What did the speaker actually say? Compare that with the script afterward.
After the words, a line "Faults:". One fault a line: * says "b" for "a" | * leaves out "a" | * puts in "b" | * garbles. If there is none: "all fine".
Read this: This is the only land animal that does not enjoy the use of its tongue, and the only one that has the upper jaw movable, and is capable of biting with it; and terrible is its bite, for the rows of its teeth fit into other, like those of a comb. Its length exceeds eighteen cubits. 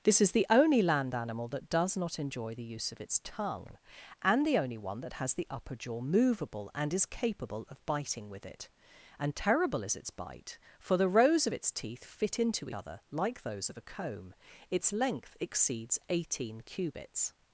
This is the only land animal that does not enjoy the use of its tongue, and the only one that has the upper jaw movable, and is capable of biting with it; and terrible is its bite, for the rows of its teeth fit into other, like those of a comb. Its length exceeds eighteen cubits.
Faults:
all fine